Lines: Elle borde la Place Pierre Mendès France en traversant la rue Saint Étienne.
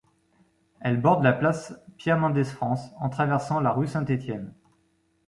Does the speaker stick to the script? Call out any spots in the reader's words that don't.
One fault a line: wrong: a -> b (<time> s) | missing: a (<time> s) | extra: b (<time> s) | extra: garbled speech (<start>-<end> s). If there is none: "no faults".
no faults